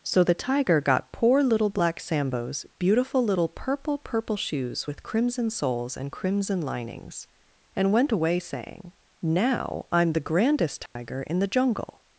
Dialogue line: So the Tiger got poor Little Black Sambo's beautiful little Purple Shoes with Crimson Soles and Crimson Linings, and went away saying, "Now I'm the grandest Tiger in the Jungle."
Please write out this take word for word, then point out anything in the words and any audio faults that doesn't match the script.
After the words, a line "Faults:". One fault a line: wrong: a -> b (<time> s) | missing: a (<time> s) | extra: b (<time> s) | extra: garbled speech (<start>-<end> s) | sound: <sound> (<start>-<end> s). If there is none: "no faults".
So the Tiger got poor Little Black Sambo's beautiful little Purple Purple Shoes with Crimson Soles and Crimson Linings, and went away saying, "Now I'm the grandest Tiger in the Jungle."
Faults:
extra: Purple (4.0 s)
sound: dropout (10.9-11.0 s)